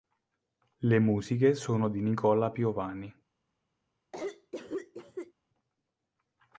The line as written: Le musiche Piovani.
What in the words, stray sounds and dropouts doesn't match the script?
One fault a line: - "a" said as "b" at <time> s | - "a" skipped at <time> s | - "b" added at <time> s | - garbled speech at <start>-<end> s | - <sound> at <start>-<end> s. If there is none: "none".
- "sono di Nicola" added at 1.5 s
- cough at 4.1-5.3 s